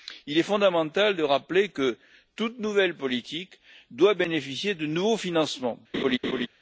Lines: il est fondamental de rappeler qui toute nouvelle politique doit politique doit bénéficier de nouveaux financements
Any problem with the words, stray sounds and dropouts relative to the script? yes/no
yes